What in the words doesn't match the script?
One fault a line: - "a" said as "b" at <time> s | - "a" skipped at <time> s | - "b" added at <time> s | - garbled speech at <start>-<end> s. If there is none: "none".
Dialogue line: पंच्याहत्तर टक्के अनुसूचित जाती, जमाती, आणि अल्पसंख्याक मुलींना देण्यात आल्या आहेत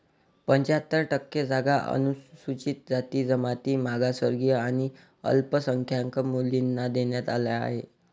- "जागा" added at 1.4 s
- "मागासवर्गीय" added at 3.8 s